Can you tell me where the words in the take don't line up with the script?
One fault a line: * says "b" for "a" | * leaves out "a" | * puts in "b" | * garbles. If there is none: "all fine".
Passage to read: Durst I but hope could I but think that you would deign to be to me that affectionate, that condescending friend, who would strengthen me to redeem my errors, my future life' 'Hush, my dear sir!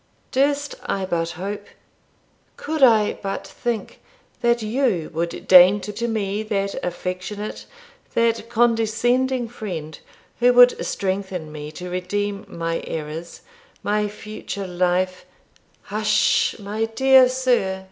* leaves out "be"